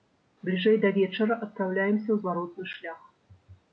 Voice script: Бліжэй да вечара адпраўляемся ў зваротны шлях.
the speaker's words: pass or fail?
pass